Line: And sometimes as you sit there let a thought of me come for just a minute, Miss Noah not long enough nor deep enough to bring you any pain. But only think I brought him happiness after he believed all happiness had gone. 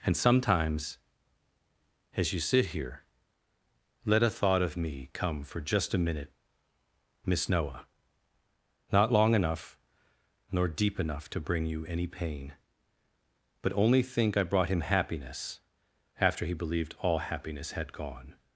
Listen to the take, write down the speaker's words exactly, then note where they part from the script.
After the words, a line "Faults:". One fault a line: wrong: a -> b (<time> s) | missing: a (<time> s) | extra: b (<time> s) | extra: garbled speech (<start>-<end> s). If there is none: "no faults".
And sometimes as you sit here let a thought of me come for just a minute, Miss Noah not long enough nor deep enough to bring you any pain. But only think I brought him happiness after he believed all happiness had gone.
Faults:
wrong: there -> here (2.7 s)